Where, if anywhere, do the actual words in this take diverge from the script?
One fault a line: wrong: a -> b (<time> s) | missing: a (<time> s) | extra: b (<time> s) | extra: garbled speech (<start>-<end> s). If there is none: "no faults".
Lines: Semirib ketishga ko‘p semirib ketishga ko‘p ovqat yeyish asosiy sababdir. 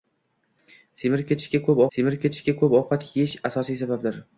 no faults